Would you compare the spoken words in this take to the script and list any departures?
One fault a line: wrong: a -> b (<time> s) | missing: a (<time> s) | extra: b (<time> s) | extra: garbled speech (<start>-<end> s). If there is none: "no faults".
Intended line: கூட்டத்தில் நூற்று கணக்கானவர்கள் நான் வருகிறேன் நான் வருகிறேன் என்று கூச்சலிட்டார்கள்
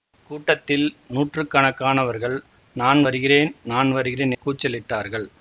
missing: என்று (4.3 s)